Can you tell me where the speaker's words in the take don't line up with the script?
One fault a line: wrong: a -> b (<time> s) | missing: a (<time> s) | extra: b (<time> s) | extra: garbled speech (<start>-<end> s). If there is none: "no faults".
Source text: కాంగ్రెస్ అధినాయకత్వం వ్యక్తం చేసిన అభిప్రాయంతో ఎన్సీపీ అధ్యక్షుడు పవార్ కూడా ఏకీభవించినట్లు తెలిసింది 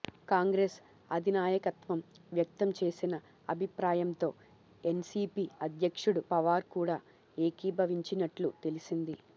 no faults